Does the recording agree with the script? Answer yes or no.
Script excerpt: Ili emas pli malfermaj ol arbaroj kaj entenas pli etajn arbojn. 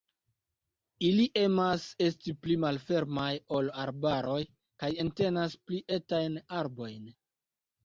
no